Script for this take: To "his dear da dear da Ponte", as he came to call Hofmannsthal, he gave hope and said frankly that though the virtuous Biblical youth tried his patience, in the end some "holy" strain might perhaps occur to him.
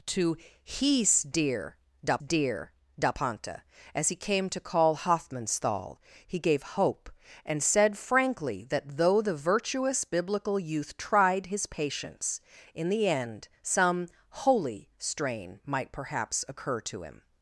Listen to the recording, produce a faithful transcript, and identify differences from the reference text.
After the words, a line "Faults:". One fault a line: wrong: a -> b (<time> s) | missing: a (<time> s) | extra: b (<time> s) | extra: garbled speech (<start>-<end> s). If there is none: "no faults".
To "his dear da dear da Ponte", as he came to call Hofmannsthal, he gave hope and said frankly that though the virtuous Biblical youth tried his patience, in the end some "holy" strain might perhaps occur to him.
Faults:
no faults